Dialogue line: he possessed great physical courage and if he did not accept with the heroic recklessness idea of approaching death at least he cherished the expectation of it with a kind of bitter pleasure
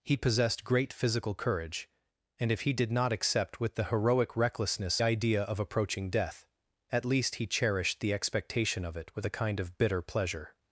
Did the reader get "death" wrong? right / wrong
right